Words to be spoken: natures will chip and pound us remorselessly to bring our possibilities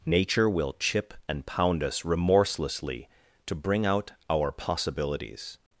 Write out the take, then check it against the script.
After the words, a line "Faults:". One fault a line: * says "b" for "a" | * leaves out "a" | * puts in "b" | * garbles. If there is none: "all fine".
nature will chip and pound us remorselessly to bring out our possibilities
Faults:
* says "nature" for "natures"
* puts in "out"